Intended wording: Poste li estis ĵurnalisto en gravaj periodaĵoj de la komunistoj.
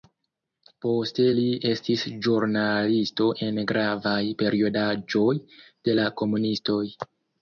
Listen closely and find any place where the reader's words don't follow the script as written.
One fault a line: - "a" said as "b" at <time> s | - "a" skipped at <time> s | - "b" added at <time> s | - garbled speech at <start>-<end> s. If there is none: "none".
none